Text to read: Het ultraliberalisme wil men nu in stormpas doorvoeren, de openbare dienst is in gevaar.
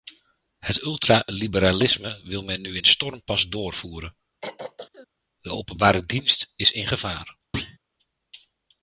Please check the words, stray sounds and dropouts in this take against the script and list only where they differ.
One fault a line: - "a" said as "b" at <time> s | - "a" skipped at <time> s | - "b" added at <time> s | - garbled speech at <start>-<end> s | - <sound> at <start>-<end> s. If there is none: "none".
- throat clearing at 4.4-5.1 s
- thud at 7.5-7.8 s